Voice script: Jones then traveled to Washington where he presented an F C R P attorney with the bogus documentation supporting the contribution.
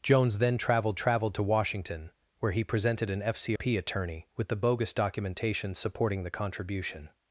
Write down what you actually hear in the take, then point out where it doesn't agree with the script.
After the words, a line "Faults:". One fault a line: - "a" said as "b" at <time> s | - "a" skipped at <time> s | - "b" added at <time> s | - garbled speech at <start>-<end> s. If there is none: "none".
Jones then traveled traveled to Washington where he presented an F C P attorney with the bogus documentation supporting the contribution.
Faults:
- "traveled" added at 0.9 s
- "R" skipped at 3.6 s